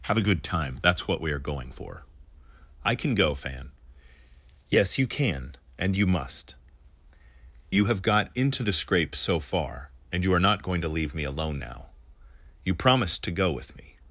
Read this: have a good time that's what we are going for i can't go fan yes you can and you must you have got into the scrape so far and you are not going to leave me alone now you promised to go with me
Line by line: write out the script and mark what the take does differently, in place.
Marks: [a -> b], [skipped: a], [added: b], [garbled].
have a good time that's what we are going for i [can't -> can] go fan yes you can and you must you have got into the scrape so far and you are not going to leave me alone now you promised to go with me